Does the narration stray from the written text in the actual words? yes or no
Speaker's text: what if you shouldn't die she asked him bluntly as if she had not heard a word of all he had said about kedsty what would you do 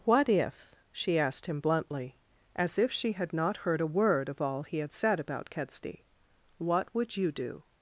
yes